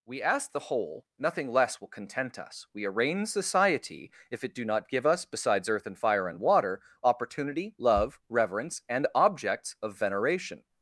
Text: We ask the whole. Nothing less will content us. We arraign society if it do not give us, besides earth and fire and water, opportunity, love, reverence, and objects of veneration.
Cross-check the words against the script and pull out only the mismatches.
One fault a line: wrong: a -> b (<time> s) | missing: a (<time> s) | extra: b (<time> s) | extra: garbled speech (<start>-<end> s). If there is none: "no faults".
no faults